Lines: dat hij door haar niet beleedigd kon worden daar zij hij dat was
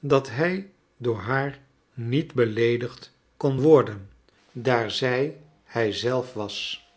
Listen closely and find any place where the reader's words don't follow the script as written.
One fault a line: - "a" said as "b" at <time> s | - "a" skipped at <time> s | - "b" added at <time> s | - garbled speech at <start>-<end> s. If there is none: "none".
- "dat" said as "zelf" at 5.9 s